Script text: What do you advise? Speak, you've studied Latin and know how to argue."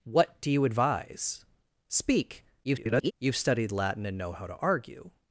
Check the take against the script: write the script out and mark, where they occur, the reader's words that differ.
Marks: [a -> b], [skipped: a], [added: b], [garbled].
What do you advise? Speak, [garbled] you've studied Latin and know how to argue."